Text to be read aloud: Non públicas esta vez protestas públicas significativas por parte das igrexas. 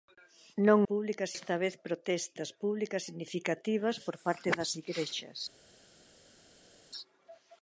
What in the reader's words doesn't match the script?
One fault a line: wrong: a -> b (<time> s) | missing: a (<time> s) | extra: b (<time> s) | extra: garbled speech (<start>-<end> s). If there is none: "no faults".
no faults